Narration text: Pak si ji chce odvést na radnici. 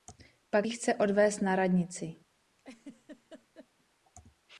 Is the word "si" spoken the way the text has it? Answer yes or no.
no